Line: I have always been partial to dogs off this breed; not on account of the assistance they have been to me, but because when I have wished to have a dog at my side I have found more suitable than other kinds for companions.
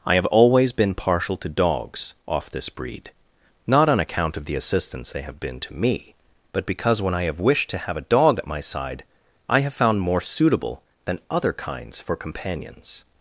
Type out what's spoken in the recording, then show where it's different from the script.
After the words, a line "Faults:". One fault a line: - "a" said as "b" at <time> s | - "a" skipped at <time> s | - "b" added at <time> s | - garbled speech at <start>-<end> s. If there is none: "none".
I have always been partial to dogs off this breed; not on account of the assistance they have been to me, but because when I have wished to have a dog at my side I have found more suitable than other kinds for companions.
Faults:
none